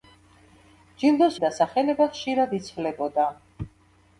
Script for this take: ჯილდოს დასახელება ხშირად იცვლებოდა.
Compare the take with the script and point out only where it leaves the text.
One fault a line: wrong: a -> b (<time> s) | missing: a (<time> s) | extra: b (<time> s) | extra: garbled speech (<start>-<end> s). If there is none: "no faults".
no faults